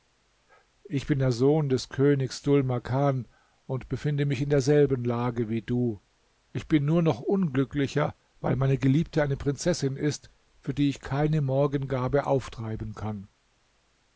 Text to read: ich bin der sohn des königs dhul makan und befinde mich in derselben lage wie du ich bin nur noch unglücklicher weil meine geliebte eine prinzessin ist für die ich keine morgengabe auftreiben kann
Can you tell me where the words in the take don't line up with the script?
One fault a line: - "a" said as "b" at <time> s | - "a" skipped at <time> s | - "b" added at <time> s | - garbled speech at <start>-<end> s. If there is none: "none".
none